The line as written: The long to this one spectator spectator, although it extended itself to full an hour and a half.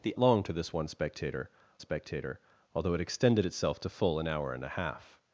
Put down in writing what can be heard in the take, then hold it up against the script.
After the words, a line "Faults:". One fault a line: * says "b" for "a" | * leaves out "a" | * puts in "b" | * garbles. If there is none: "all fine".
The long to this one spectator spectator, although it extended itself to full an hour and a half.
Faults:
all fine